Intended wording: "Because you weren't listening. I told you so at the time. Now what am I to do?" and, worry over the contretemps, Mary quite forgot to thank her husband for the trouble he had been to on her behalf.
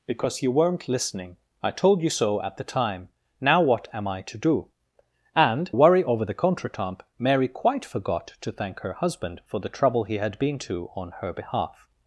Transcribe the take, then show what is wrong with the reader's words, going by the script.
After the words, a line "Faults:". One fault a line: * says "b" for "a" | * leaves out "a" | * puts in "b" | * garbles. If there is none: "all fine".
"Because you weren't listening. I told you so at the time. Now what am I to do?" and, worry over the contretemps, Mary quite forgot to thank her husband for the trouble he had been to on her behalf.
Faults:
all fine